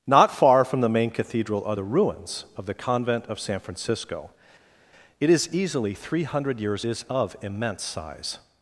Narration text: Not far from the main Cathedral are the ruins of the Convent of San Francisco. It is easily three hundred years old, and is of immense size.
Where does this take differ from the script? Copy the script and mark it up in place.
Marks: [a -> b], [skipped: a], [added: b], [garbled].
Not far from the main Cathedral are the ruins of the Convent of San Francisco. It is easily three hundred years [skipped: old, and] is of immense size.